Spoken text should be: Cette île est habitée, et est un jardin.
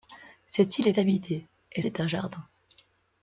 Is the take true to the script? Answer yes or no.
yes